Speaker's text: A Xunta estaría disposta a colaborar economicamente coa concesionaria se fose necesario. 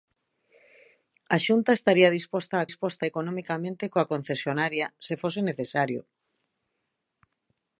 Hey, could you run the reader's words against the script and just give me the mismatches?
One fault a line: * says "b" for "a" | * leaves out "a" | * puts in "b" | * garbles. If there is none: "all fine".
* says "disposta" for "colaborar"